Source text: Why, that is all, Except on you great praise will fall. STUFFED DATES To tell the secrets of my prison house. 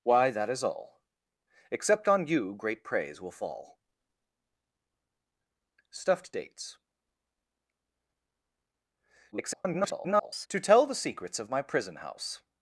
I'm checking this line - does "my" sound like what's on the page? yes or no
yes